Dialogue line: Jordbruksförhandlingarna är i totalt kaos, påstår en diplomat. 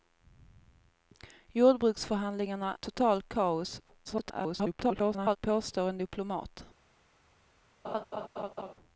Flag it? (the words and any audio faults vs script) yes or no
yes